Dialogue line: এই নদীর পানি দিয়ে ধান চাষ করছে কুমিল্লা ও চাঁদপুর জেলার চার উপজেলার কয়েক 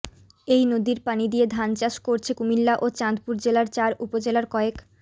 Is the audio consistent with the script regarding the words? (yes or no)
yes